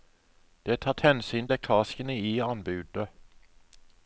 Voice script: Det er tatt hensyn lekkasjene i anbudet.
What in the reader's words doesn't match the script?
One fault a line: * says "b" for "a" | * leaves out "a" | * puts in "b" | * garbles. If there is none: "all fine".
all fine